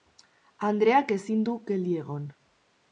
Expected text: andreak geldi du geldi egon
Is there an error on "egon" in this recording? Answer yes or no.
no